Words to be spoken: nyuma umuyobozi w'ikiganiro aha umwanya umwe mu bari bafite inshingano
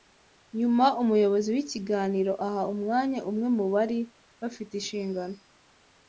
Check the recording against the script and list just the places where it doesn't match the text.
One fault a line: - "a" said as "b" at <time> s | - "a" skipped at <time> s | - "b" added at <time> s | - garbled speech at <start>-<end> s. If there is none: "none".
none